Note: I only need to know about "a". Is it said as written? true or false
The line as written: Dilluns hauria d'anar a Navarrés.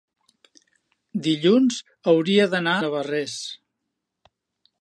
false